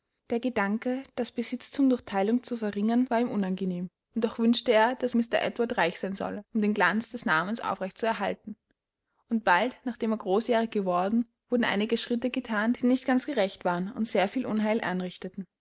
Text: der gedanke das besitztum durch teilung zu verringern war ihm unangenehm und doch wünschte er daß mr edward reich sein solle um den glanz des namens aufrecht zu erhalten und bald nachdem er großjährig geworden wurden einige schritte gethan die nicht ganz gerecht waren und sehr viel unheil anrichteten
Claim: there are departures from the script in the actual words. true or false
false